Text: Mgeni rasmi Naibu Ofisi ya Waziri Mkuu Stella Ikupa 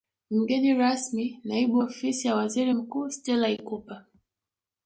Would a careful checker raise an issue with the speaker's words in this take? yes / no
no